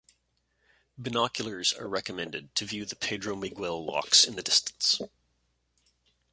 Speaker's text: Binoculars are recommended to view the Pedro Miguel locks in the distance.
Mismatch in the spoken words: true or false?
false